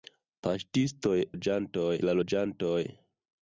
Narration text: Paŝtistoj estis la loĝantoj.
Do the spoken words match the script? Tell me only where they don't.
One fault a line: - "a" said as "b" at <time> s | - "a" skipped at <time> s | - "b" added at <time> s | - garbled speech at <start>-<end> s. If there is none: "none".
- "estis" said as "loĝantoj" at 1.3 s